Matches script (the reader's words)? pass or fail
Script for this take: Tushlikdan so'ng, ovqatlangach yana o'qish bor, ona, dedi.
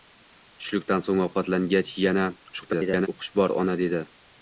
fail